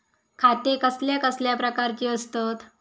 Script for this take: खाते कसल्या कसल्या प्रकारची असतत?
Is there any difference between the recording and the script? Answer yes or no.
no